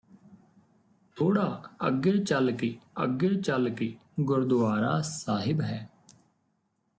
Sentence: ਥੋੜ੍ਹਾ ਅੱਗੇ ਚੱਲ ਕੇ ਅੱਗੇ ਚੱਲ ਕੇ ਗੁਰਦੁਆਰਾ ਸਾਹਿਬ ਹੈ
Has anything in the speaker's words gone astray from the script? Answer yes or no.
no